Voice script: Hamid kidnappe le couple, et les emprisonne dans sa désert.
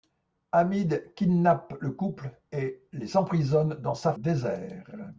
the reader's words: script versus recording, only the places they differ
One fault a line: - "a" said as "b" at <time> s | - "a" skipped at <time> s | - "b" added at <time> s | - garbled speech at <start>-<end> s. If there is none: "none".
none